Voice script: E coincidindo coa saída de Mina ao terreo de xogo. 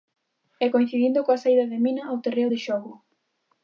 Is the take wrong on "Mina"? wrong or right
right